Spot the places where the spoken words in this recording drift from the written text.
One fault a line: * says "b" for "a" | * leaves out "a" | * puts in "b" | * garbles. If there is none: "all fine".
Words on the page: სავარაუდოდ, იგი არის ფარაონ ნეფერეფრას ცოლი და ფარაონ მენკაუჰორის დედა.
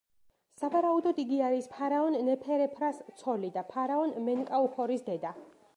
all fine